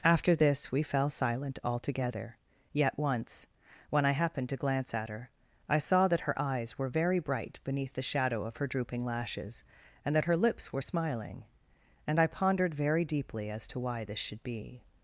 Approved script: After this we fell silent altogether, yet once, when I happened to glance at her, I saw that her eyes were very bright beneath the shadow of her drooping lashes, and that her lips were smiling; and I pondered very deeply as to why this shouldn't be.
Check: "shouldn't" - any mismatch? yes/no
yes